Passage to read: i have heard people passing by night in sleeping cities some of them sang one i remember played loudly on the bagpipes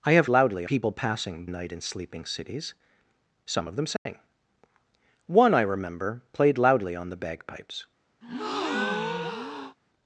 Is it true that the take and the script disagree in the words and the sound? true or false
true